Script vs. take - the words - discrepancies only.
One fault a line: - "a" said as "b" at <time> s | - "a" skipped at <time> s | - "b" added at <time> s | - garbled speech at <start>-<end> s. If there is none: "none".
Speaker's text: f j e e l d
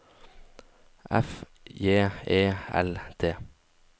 - "e" skipped at 2.4 s